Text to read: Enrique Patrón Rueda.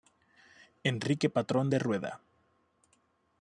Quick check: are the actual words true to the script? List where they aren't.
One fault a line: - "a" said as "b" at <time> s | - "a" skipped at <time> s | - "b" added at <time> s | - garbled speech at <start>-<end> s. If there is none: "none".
- "De" added at 1.7 s